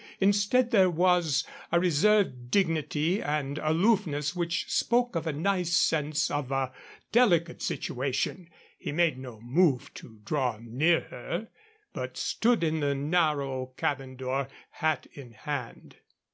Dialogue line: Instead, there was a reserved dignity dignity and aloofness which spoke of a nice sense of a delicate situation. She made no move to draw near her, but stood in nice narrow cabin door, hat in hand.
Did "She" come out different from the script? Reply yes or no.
yes